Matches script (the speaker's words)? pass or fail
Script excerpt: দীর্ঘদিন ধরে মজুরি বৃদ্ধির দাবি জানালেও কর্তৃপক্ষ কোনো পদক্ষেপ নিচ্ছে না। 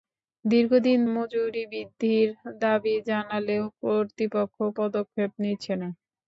fail